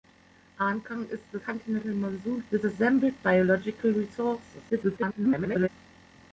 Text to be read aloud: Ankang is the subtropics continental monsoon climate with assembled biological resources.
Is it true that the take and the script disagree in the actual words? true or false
true